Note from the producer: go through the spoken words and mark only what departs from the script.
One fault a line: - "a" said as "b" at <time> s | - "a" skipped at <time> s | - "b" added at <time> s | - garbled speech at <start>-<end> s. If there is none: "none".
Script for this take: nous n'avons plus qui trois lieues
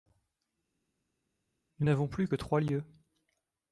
- "qui" said as "que" at 2.3 s